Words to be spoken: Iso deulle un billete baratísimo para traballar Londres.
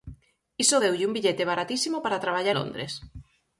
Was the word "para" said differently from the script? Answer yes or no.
no